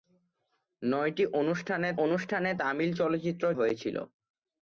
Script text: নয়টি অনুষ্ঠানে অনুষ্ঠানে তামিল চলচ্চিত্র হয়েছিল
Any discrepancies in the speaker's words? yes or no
no